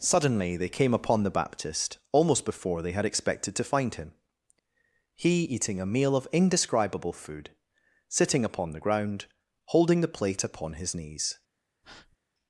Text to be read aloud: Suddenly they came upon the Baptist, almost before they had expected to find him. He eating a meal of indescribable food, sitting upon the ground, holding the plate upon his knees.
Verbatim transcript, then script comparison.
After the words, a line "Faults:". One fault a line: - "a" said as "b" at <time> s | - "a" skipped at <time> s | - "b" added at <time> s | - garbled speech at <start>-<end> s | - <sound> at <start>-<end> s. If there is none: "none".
Suddenly they came upon the Baptist, almost before they had expected to find him. He eating a meal of indescribable food, sitting upon the ground, holding the plate upon his knees.
Faults:
- breath at 11.8-12.2 s